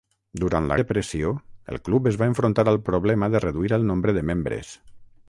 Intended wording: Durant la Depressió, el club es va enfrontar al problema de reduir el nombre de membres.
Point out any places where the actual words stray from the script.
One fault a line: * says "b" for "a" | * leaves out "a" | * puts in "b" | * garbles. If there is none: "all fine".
all fine